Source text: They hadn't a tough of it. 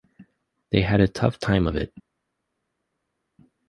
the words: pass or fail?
fail